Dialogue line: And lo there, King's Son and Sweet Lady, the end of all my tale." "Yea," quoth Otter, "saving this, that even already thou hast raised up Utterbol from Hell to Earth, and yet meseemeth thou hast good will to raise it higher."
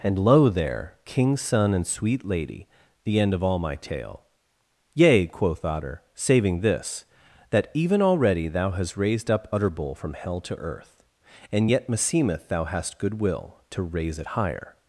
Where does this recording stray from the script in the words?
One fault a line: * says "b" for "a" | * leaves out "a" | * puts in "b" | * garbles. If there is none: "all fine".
all fine